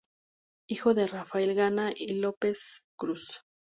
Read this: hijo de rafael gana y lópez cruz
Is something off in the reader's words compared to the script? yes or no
no